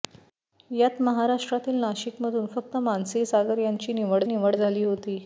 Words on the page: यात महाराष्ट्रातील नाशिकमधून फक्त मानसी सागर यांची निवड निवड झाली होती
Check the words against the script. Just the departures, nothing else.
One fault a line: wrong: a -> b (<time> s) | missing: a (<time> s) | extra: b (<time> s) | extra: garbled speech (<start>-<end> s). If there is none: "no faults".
no faults